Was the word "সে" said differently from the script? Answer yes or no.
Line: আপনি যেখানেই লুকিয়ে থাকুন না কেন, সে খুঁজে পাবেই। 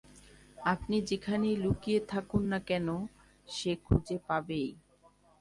no